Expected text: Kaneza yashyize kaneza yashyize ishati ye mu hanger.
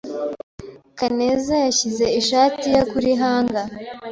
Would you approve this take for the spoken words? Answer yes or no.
no